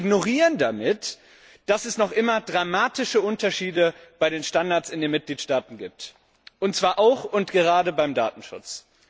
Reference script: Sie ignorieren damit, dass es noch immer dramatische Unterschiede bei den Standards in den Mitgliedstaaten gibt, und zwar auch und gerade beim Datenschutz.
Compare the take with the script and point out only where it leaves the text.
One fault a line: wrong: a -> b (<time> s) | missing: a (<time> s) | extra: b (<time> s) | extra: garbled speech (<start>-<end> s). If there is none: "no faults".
no faults